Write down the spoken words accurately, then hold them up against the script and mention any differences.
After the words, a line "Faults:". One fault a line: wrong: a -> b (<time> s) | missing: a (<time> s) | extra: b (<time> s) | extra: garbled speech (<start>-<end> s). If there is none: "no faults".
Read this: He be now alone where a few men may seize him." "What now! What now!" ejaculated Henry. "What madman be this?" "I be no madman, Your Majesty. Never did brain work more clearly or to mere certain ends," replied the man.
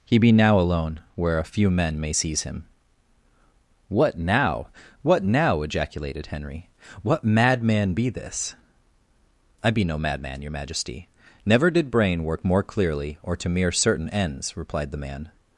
He be now alone where a few men may seize him." "What now! What now!" ejaculated Henry. "What madman be this?" "I be no madman, Your Majesty. Never did brain work more clearly or to mere certain ends," replied the man.
Faults:
no faults